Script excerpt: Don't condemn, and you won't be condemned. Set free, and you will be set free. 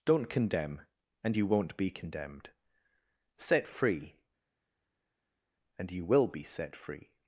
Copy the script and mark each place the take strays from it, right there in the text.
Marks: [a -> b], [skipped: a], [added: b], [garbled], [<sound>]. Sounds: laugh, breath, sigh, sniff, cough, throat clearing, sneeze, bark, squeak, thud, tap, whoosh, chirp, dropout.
Don't condemn, and you won't be condemned. Set free, and you will be set free.